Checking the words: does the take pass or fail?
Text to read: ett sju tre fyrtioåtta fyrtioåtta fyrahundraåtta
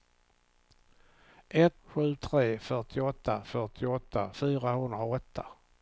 pass